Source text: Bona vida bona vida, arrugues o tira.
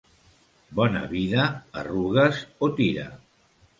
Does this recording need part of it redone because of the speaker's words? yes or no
yes